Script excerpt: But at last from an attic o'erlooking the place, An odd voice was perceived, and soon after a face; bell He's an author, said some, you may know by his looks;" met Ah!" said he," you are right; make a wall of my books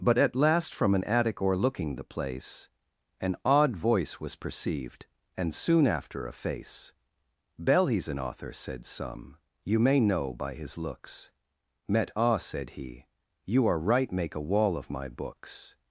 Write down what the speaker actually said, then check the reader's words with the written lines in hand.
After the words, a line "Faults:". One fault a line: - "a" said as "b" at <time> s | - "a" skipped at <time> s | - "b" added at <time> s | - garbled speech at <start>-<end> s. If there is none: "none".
But at last from an attic o'erlooking the place, An odd voice was perceived, and soon after a face; bell He's an author, said some, you may know by his looks;" met Ah!" said he," you are right; make a wall of my books
Faults:
none